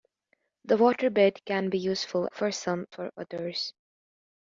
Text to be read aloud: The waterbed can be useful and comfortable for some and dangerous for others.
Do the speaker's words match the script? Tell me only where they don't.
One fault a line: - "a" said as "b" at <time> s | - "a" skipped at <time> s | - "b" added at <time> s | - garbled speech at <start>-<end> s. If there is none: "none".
- "and comfortable" skipped at 2.3 s
- "and dangerous" skipped at 2.9 s